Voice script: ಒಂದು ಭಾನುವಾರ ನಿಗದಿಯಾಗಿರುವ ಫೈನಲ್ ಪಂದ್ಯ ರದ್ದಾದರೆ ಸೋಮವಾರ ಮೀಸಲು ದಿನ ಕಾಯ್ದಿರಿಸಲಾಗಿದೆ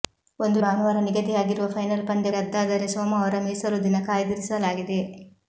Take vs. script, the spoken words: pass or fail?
pass